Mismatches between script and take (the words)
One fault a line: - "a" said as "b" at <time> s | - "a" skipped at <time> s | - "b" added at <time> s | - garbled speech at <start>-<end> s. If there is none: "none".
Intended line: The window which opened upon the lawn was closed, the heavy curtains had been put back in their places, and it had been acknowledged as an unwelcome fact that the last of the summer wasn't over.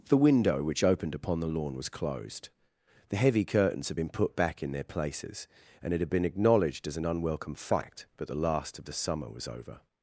- "wasn't" said as "was" at 9.3 s